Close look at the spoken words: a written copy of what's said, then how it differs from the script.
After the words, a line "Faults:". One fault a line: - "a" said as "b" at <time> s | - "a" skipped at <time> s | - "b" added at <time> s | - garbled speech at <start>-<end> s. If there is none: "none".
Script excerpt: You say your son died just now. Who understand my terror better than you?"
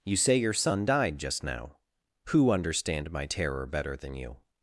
You say your son died just now. Who understand my terror better than you?"
Faults:
none